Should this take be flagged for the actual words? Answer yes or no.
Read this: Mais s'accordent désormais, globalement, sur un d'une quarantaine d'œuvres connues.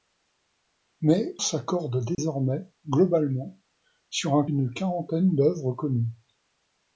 no